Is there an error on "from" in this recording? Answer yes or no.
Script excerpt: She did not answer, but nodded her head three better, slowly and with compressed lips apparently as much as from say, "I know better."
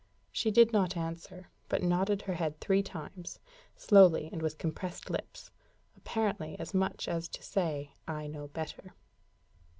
yes